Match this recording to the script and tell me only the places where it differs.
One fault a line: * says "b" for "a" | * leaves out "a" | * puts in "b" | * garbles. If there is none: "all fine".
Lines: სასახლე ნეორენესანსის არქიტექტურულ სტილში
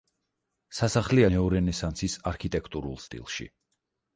all fine